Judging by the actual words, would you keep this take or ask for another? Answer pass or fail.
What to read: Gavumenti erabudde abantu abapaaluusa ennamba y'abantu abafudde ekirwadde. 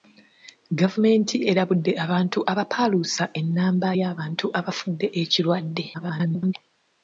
fail